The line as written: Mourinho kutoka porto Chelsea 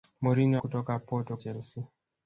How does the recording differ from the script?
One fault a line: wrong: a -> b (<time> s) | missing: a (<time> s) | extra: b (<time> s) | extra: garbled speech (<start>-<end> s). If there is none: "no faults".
no faults